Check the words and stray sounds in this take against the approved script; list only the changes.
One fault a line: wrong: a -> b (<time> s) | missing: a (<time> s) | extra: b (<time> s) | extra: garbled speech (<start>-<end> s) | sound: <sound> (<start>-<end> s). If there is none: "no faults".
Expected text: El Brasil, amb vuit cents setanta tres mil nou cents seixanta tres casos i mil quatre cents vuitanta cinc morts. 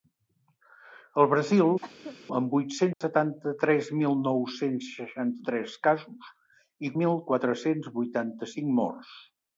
sound: cough (1.8-2.2 s)
sound: dropout (2.9-3.0 s)